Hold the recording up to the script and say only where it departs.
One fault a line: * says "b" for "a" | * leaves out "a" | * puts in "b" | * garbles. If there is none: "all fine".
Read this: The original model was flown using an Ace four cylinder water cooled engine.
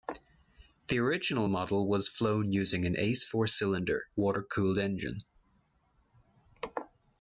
all fine